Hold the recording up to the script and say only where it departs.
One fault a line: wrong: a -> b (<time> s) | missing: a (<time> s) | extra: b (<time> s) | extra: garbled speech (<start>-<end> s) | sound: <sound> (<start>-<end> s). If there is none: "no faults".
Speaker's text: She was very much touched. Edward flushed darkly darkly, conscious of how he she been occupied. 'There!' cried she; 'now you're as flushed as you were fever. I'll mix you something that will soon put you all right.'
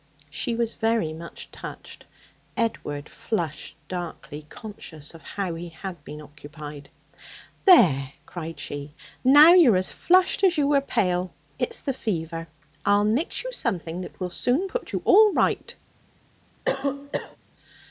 missing: darkly (4.5 s)
wrong: she -> had (5.7 s)
extra: pale It's the (10.8 s)
sound: cough (16.7-17.4 s)